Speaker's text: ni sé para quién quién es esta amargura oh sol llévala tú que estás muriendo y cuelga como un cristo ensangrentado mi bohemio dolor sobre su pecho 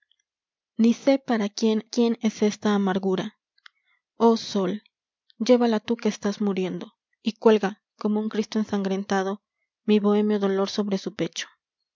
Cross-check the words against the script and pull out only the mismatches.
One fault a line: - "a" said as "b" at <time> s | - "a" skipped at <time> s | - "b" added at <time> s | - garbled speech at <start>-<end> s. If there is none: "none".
none